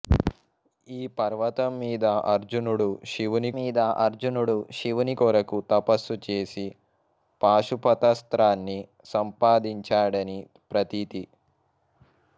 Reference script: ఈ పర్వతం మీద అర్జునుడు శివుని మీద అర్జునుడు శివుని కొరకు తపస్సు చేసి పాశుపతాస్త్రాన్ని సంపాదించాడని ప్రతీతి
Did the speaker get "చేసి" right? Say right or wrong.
right